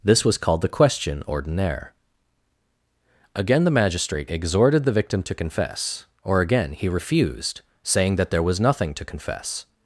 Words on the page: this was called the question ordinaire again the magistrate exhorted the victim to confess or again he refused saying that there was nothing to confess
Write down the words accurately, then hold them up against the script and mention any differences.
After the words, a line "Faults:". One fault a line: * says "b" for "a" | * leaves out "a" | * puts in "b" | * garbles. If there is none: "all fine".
this was called the question ordinaire again the magistrate exhorted the victim to confess or again he refused saying that there was nothing to confess
Faults:
all fine